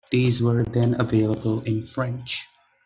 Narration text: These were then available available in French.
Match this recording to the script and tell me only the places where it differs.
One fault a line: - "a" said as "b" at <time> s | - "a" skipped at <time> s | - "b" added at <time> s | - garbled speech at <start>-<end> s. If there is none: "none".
- "available" skipped at 1.6 s